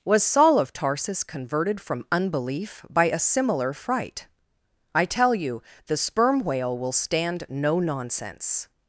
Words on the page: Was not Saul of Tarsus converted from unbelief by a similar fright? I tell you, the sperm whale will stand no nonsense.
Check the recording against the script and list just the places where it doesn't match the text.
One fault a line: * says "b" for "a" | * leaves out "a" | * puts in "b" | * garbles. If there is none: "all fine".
* leaves out "not"